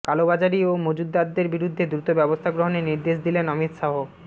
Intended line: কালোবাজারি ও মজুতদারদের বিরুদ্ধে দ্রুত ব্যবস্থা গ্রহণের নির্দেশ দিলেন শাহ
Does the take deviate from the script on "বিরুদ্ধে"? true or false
false